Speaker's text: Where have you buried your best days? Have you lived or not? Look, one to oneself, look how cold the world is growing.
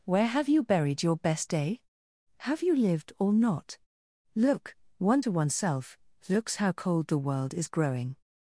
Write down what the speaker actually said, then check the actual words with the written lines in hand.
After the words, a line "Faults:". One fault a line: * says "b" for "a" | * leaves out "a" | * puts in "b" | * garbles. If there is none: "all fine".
Where have you buried your best day? Have you lived or not? Look, one to oneself, looks how cold the world is growing.
Faults:
* says "day" for "days"
* says "looks" for "look"